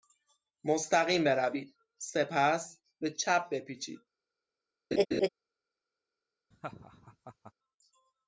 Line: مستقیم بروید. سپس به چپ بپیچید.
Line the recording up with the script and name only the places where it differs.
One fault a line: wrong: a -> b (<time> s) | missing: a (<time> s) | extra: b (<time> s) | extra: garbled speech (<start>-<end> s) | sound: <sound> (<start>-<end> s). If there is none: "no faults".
sound: laugh (4.9-5.3 s)
sound: laugh (6.5-7.5 s)